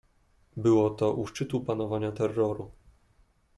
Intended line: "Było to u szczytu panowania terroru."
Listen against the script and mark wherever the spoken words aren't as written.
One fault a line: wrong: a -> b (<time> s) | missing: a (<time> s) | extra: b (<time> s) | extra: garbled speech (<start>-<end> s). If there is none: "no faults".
no faults